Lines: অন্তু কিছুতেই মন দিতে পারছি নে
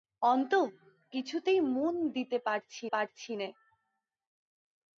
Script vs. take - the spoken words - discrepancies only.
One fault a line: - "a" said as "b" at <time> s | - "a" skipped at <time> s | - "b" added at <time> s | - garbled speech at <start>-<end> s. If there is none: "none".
- "পারছি" added at 2.9 s